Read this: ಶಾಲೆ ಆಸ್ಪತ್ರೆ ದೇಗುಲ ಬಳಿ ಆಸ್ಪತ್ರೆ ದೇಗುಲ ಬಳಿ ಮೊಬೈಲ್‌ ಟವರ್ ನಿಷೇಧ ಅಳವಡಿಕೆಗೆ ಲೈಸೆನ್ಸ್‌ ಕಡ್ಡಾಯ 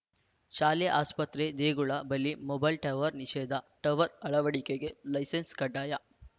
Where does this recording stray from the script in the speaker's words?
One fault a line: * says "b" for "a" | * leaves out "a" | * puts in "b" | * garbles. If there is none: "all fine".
* leaves out "ಆಸ್ಪತ್ರೆ ದೇಗುಲ ಬಳಿ"
* puts in "ಟವರ್"